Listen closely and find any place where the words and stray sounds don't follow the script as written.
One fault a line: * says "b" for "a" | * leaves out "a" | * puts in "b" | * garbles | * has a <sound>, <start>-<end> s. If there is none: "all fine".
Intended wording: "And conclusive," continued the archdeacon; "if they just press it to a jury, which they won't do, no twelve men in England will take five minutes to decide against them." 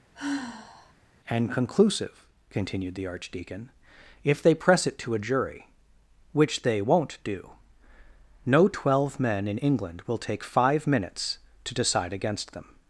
* has a sigh, 0.1-0.9 s
* leaves out "just"